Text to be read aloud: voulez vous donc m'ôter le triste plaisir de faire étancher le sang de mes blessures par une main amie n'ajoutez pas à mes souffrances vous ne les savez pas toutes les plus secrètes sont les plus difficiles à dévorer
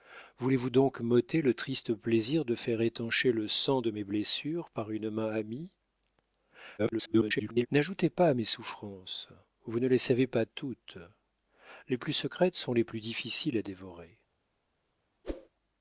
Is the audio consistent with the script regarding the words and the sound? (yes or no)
no